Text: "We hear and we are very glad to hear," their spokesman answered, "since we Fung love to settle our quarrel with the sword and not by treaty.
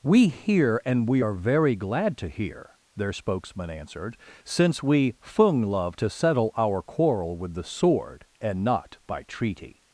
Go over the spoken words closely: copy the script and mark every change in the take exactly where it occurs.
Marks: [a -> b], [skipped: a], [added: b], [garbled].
"We hear and we are very glad to hear," their spokesman answered, "since we Fung love to settle our quarrel with the sword and not by treaty.